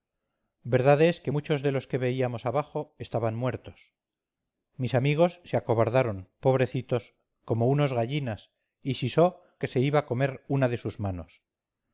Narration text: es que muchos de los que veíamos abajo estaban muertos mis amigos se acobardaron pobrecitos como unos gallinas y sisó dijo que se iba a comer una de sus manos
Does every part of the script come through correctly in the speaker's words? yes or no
no